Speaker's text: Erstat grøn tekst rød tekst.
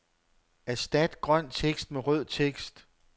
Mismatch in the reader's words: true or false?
true